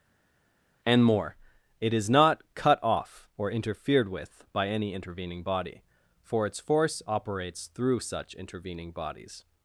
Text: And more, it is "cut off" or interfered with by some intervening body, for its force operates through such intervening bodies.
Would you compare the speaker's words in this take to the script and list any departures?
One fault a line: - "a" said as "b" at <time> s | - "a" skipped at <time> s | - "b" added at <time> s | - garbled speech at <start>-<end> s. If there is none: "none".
- "not" added at 2.1 s
- "some" said as "any" at 4.7 s